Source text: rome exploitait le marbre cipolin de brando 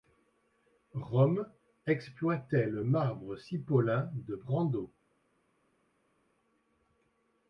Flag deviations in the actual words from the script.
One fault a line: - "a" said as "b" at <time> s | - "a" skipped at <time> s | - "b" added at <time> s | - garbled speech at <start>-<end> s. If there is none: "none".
none